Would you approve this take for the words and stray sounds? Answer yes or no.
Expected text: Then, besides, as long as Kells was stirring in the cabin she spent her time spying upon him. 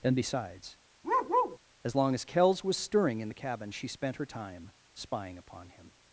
no